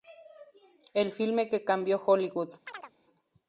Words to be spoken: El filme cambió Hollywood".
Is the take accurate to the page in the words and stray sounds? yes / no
no